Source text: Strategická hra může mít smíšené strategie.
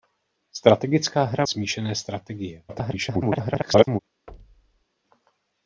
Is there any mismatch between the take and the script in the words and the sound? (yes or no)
yes